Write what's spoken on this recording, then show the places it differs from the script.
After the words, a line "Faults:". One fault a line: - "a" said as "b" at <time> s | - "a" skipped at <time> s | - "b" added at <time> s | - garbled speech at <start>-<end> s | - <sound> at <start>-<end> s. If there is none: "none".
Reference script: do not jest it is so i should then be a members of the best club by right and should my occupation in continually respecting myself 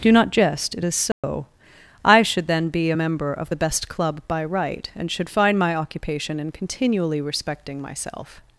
do not jest it is so i should then be a member of the best club by right and should find my occupation in continually respecting myself
Faults:
- dropout at 1.1-1.2 s
- "members" said as "member" at 2.9 s
- "find" added at 5.3 s